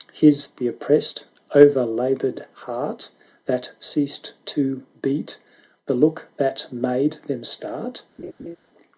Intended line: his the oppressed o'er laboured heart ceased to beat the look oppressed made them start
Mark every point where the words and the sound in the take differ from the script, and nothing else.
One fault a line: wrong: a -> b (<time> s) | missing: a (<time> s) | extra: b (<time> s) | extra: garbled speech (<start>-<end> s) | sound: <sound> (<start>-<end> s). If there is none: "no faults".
extra: that (3.4 s)
wrong: oppressed -> that (6.4 s)
sound: laugh (8.2-8.6 s)